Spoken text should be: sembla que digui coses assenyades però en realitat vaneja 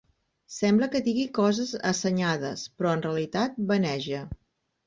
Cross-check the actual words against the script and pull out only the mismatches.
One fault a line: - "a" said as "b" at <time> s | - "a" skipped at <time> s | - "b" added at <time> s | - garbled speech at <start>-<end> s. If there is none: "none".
none